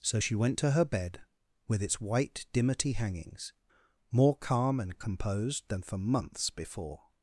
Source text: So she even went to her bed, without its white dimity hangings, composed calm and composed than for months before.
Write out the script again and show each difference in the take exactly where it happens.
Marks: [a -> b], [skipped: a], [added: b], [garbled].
So she [skipped: even] went to her bed, [without -> with] its white dimity hangings, [composed -> more] calm and composed than for months before.